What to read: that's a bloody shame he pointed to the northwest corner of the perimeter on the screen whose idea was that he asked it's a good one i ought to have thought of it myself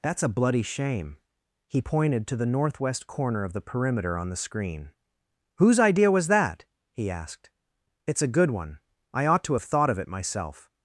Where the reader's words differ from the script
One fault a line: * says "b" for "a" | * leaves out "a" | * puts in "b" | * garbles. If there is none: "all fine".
all fine